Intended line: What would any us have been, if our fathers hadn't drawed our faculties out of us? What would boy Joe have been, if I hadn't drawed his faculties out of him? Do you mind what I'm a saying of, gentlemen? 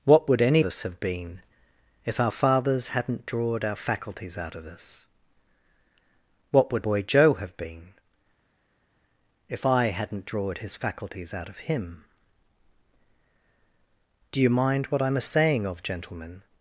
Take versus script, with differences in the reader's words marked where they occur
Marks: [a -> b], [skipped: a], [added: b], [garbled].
What would any us have been, if our fathers hadn't drawed our faculties out of us? What would boy Joe have been, if I hadn't drawed his faculties out of him? Do you mind what I'm a saying of, gentlemen?